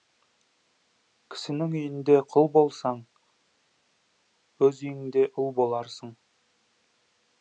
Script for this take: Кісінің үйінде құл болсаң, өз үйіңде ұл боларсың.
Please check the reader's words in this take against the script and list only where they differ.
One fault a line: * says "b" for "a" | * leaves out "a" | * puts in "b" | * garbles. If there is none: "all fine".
all fine